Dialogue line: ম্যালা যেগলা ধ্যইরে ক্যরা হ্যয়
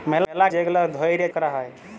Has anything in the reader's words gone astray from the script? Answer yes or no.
no